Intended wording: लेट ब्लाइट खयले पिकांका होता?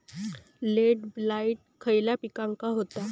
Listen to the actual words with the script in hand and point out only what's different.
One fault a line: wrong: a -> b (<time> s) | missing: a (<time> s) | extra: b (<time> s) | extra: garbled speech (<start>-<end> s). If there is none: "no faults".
no faults